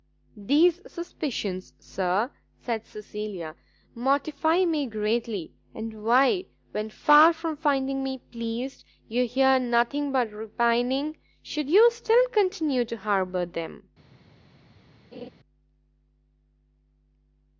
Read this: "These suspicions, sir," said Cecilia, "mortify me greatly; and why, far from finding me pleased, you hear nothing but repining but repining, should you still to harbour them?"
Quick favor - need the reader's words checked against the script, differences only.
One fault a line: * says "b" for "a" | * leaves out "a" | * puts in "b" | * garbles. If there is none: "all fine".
* puts in "when"
* leaves out "but repining"
* puts in "continue"